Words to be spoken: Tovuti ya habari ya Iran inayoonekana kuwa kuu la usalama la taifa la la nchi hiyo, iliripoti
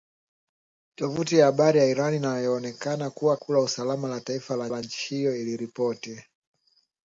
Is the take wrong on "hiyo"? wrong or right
right